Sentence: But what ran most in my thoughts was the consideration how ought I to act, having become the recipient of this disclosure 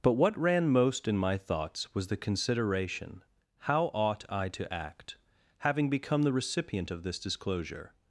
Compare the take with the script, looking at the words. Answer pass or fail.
pass